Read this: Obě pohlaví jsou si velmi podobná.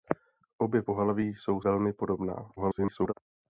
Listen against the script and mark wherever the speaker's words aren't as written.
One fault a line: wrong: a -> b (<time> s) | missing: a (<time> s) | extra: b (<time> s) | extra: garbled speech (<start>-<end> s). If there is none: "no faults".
missing: si (1.6 s)
extra: garbled speech (2.6-3.1 s)